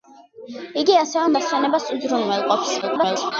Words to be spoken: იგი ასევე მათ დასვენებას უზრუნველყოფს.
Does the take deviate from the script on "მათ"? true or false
true